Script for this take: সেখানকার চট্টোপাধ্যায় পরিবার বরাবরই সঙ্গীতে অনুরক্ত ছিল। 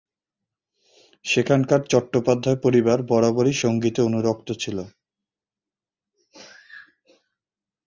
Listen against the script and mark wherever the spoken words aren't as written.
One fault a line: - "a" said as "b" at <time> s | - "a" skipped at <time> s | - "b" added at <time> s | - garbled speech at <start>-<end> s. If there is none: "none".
none